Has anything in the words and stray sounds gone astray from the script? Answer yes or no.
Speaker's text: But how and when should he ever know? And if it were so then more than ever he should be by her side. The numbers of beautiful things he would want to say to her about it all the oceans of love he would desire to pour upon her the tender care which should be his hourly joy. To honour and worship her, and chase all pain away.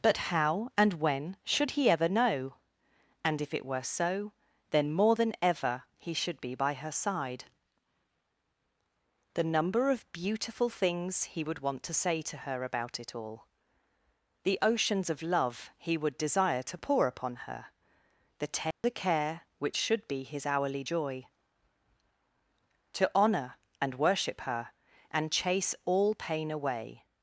yes